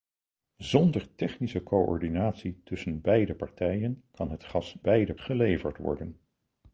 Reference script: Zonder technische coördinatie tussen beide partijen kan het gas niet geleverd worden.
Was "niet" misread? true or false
true